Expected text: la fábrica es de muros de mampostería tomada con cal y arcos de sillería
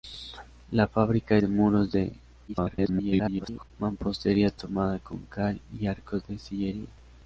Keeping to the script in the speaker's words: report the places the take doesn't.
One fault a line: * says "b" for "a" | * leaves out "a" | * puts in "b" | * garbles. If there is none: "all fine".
* leaves out "es"
* garbles